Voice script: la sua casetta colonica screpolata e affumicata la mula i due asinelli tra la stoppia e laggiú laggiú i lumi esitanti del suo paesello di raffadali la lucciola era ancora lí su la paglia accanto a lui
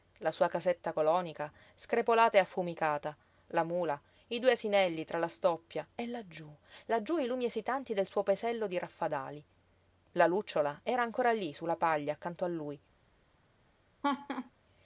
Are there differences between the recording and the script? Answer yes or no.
no